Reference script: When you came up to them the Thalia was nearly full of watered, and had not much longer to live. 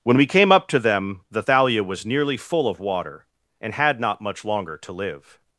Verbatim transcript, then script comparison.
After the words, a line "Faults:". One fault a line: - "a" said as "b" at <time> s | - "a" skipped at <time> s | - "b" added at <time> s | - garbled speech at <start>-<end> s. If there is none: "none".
When we came up to them the Thalia was nearly full of water, and had not much longer to live.
Faults:
- "you" said as "we" at 0.2 s
- "watered" said as "water" at 2.8 s